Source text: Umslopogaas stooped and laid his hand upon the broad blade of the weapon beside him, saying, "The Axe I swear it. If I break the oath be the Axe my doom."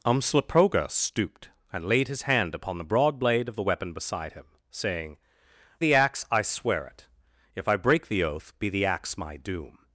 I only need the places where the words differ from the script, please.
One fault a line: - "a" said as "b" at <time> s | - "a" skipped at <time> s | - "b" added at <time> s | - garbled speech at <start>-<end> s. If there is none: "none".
none